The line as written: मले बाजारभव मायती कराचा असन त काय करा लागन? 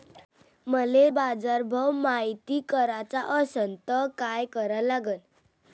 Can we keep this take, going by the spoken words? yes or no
yes